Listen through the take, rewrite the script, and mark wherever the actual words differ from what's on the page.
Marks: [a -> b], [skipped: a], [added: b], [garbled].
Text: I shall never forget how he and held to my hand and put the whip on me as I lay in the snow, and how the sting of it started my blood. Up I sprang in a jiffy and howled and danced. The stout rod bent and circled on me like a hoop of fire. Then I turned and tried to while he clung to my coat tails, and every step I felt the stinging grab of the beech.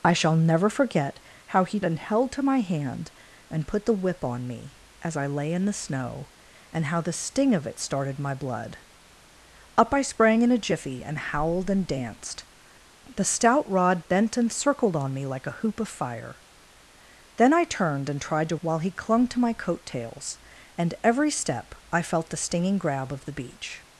I shall never forget how he and held to my hand and put the whip on me as I lay in the snow, and how the sting of it started my blood. Up I sprang in a jiffy and howled and danced. The stout rod bent and circled on me like a hoop of fire. Then I turned and tried to while he clung to my coat tails, and every step I felt the stinging grab of the beech.